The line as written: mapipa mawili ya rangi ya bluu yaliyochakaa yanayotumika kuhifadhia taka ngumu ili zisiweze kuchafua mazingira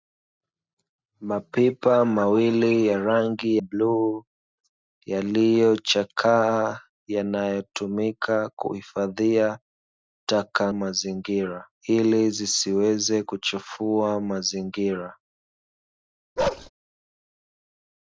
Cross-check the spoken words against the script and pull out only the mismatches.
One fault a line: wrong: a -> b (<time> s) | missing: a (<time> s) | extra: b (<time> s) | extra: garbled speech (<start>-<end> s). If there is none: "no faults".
missing: ya (3.6 s)
wrong: ngumu -> mazingira (10.7 s)